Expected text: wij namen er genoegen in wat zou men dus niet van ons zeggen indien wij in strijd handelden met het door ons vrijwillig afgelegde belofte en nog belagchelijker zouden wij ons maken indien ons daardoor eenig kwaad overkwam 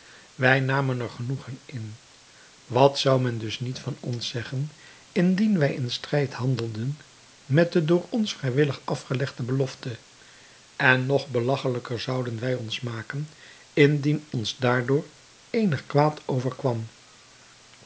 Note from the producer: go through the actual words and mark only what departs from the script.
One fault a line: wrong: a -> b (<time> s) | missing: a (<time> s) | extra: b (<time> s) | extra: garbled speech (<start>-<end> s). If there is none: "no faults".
wrong: het -> de (7.7 s)